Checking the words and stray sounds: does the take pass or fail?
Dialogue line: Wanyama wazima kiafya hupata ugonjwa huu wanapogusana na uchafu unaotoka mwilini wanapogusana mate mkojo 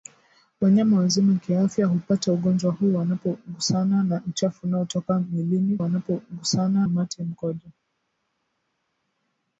pass